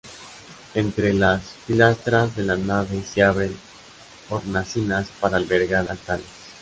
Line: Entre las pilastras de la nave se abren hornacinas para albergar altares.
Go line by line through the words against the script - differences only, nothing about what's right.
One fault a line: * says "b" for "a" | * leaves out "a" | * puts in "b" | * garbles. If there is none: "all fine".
all fine